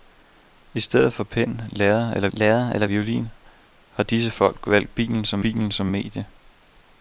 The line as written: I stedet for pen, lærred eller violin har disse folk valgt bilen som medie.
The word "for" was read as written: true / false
true